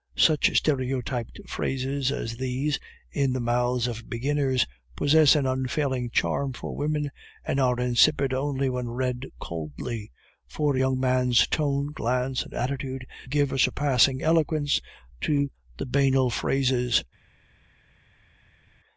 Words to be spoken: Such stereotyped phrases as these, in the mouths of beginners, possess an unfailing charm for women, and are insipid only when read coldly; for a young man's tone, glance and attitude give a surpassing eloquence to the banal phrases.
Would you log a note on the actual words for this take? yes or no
no